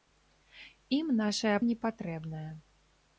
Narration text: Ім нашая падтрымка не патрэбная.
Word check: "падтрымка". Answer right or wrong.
wrong